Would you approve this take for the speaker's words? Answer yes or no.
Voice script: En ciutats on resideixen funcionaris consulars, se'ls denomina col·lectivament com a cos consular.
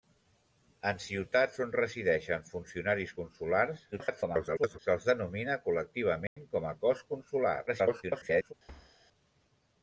no